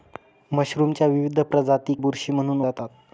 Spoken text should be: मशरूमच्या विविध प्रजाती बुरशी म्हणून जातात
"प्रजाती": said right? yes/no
yes